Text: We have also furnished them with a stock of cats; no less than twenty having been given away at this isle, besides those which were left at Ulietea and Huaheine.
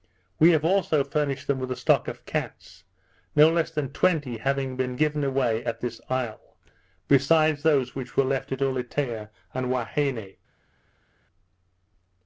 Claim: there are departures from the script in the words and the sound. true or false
false